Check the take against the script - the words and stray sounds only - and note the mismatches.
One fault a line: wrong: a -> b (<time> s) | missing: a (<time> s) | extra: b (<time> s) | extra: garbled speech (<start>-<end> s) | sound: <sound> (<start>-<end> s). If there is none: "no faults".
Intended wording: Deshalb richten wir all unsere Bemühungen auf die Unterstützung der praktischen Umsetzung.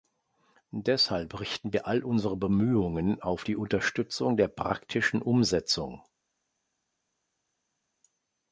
no faults